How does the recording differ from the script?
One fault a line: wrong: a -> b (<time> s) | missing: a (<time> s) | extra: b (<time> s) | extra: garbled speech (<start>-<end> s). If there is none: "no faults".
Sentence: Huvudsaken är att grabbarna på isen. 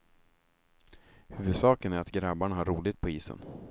extra: har roligt (2.5 s)